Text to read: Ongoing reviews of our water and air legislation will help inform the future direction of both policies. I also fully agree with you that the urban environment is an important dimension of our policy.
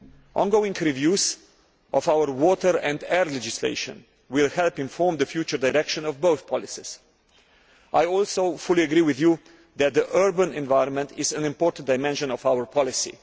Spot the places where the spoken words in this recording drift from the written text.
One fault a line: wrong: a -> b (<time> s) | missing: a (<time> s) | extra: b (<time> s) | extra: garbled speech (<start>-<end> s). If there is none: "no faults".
no faults